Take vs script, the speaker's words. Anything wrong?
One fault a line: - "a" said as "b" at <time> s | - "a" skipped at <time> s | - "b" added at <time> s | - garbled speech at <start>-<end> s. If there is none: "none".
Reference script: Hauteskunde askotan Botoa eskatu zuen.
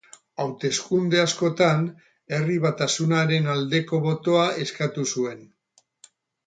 - "Herri Batasunaren aldeko" added at 2.4 s